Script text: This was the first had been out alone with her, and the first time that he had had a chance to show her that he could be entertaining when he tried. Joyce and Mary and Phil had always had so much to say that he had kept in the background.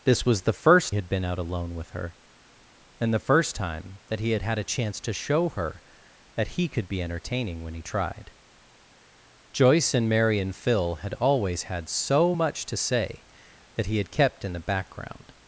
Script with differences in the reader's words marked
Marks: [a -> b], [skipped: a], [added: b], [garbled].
This was the first had been out alone with her, and the first time that he had had a chance to show her that he could be entertaining when he tried. Joyce and Mary and Phil had always had so much to say that he had kept in the background.